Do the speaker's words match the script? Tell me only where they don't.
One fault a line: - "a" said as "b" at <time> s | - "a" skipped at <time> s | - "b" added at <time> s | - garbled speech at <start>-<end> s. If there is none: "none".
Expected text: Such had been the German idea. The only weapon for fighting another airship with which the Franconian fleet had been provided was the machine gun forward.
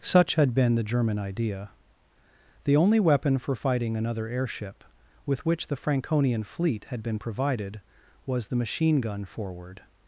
none